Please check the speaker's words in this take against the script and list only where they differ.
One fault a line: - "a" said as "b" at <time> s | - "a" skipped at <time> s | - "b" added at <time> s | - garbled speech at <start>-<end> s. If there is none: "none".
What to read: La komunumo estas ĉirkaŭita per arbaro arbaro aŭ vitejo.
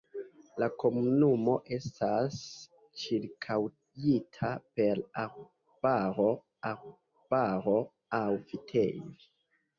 none